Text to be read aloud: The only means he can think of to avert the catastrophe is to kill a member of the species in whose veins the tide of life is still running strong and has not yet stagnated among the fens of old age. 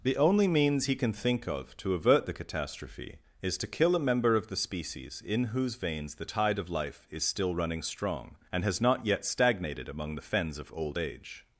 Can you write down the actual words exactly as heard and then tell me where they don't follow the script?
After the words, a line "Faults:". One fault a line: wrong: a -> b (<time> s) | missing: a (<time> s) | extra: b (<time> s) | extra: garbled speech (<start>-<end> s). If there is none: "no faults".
The only means he can think of to avert the catastrophe is to kill a member of the species in whose veins the tide of life is still running strong and has not yet stagnated among the fens of old age.
Faults:
no faults